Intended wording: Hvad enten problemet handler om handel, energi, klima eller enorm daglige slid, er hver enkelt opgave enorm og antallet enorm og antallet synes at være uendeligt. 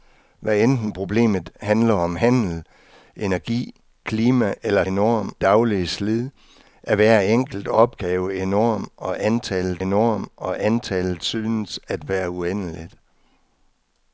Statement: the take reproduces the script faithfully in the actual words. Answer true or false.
true